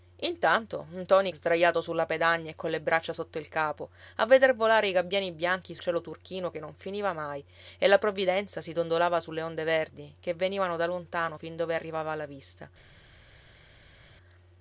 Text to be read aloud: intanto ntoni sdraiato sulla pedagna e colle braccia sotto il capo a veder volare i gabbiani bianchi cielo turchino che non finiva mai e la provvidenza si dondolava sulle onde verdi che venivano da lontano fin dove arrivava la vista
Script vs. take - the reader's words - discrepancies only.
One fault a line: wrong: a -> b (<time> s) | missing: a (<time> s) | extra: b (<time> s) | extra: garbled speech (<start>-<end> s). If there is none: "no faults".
no faults